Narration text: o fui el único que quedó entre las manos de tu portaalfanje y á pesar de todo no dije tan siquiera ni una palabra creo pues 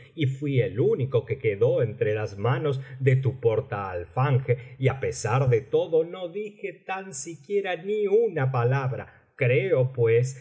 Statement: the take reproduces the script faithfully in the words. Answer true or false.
false